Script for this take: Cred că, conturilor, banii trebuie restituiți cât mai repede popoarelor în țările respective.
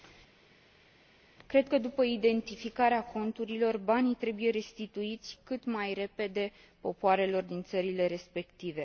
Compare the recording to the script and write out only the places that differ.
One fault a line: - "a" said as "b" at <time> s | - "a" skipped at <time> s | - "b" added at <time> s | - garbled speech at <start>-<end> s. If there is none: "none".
- "după identificarea" added at 1.8 s
- "în" said as "din" at 7.4 s